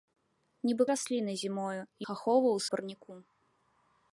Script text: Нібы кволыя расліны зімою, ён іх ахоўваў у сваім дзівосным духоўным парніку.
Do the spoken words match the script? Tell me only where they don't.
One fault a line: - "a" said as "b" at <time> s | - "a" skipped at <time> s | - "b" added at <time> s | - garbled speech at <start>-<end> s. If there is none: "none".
- "кволыя" skipped at 0.8 s
- "ён" skipped at 1.8 s
- "сваім дзівосным духоўным" skipped at 2.6 s